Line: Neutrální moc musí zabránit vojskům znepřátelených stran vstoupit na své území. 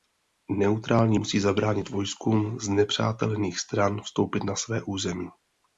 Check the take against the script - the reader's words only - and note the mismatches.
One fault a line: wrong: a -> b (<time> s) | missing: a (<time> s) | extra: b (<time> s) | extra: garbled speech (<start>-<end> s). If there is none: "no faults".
missing: moc (1.2 s)